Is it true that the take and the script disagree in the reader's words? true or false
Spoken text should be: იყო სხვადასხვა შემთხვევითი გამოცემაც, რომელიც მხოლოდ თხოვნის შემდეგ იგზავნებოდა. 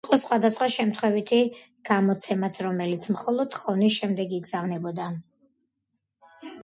false